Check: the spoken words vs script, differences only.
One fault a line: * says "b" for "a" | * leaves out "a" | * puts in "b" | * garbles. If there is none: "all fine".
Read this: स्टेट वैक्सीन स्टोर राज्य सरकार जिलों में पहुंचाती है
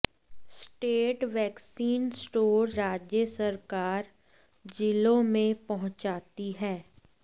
all fine